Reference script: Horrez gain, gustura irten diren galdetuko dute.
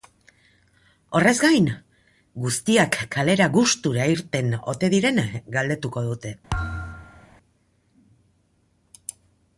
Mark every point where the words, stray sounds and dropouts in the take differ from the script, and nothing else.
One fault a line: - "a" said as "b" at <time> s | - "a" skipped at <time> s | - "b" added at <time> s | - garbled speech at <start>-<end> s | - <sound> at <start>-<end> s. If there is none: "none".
- "guztiak kalera" added at 2.4 s
- "ote" added at 4.7 s
- thud at 6.5-7.3 s